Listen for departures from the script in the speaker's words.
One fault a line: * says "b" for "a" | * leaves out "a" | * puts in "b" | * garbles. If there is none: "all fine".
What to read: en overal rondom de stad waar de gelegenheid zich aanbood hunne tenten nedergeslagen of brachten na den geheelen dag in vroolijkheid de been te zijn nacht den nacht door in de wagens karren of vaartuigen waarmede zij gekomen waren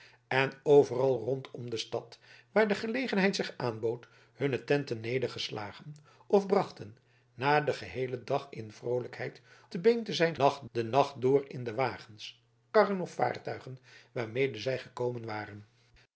all fine